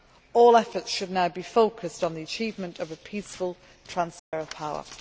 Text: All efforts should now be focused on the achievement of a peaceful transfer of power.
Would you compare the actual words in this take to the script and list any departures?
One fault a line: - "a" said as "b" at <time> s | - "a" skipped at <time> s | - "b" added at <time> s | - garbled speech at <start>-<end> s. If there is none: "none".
none